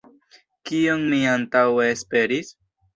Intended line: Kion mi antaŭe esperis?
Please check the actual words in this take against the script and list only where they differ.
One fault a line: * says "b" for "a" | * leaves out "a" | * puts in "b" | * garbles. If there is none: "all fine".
all fine